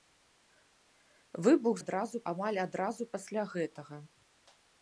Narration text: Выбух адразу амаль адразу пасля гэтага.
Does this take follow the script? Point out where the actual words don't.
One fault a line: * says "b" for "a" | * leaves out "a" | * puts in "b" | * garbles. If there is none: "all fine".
all fine